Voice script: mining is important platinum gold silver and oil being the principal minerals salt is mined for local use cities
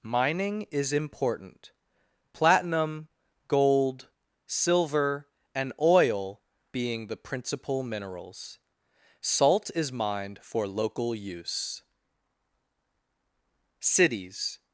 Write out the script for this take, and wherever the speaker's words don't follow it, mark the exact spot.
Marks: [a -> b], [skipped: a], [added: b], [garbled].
mining is important platinum gold silver and oil being the principal minerals salt is mined for local use cities